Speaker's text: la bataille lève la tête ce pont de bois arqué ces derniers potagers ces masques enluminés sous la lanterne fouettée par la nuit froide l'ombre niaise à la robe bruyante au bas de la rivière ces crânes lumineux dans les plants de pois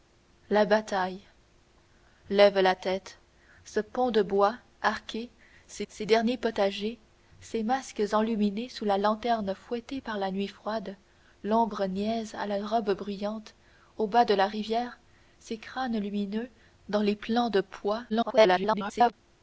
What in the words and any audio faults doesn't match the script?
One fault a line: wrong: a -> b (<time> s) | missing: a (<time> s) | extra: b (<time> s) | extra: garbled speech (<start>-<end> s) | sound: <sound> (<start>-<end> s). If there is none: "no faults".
extra: ces (5.9 s)
extra: garbled speech (18.1-19.1 s)